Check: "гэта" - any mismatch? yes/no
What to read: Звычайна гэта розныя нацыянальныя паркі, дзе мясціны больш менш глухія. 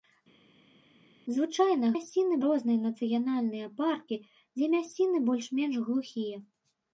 yes